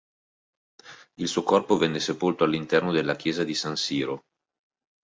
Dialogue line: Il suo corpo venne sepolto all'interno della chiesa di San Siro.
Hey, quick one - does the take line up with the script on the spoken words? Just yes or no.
yes